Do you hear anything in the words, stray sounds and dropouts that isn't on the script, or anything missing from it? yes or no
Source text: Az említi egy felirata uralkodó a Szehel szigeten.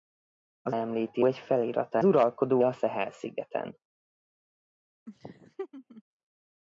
yes